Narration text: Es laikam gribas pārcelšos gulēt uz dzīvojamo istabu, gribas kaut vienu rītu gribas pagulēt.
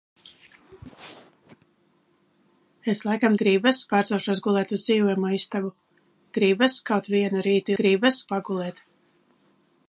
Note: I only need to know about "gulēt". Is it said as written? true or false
true